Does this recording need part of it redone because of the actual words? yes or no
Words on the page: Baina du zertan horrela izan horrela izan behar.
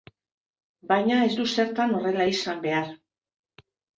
yes